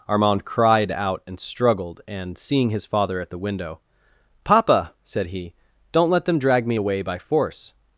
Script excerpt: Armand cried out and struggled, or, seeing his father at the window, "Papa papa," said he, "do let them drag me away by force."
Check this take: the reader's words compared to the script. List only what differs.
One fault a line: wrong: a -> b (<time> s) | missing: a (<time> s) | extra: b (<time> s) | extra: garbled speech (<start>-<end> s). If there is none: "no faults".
wrong: or -> and (2.1 s)
missing: papa (5.0 s)
wrong: do -> don't (5.9 s)